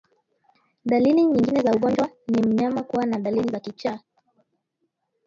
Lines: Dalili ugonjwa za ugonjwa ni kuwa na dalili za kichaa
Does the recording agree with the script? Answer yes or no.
no